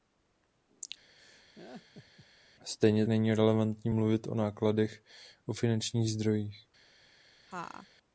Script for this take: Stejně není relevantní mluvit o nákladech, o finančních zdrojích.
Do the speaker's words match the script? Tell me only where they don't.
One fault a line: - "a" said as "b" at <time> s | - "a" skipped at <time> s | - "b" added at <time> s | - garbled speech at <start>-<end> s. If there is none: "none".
none